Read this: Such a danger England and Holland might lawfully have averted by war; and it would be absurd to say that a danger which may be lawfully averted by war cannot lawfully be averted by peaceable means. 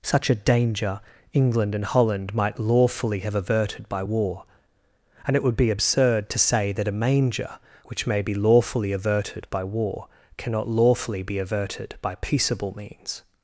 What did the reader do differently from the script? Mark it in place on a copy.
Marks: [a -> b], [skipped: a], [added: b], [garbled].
Such a danger England and Holland might lawfully have averted by war; and it would be absurd to say that a [danger -> manger] which may be lawfully averted by war cannot lawfully be averted by peaceable means.